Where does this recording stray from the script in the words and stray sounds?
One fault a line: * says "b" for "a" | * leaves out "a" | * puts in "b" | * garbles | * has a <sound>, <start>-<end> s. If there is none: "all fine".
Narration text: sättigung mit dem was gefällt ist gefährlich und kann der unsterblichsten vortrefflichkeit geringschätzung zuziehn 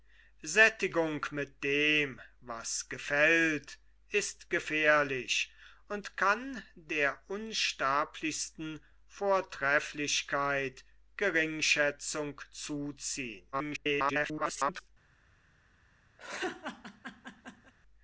* garbles
* has a laugh, 16.2-17.7 s